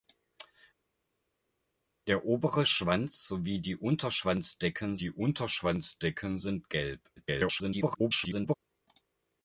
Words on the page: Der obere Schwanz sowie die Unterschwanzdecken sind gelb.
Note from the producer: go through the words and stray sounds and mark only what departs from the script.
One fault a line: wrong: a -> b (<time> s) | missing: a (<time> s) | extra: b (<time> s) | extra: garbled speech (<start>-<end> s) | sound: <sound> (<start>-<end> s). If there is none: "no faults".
extra: die Unterschwanzdecken (4.9 s)
extra: garbled speech (7.2-8.5 s)